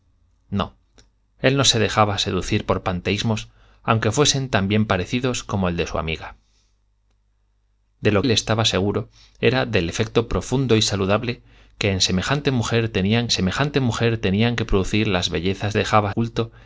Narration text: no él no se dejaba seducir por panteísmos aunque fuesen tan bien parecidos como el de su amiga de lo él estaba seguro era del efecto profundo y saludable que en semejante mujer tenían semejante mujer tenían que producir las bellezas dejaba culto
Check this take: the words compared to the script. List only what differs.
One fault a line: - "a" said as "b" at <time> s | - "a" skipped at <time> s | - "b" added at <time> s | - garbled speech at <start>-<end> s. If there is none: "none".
none